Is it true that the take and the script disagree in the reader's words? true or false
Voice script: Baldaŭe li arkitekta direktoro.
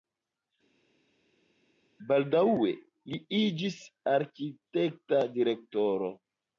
true